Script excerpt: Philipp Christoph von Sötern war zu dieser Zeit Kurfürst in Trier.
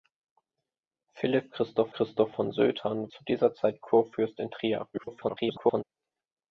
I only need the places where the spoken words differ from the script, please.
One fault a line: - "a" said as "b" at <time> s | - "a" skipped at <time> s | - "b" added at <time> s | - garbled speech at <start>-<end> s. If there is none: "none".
- "Christoph" added at 1.9 s
- "war" skipped at 3.1 s
- garbled speech at 4.9-5.8 s